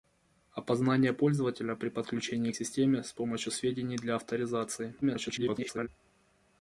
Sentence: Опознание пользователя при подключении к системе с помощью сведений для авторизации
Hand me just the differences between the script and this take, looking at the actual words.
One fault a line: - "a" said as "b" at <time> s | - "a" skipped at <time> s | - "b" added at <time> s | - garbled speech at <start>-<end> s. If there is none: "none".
- garbled speech at 5.0-5.9 s